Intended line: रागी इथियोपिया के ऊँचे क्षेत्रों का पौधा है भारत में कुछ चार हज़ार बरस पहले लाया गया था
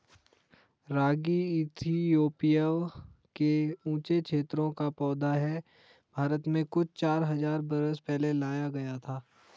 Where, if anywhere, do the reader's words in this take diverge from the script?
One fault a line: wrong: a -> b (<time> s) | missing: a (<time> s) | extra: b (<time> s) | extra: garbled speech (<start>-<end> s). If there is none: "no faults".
no faults